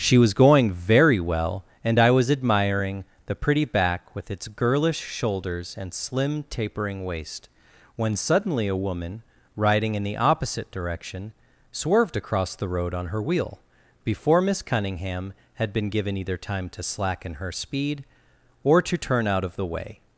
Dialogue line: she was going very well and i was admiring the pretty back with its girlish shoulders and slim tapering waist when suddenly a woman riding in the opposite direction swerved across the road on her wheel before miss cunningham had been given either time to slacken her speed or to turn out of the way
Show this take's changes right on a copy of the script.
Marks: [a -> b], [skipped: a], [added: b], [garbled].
she was going very well and i was admiring the pretty back with its girlish shoulders and slim tapering waist when suddenly a woman riding in the opposite direction swerved across the road on her wheel before miss cunningham had been given either time to slacken her speed or to turn out of the way